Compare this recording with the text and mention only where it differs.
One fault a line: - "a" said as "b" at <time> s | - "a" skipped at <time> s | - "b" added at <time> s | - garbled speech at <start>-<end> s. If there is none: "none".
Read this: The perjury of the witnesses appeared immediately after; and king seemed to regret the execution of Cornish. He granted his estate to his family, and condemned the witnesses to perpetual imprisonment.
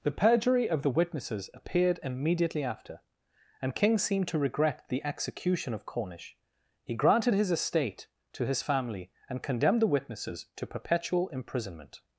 none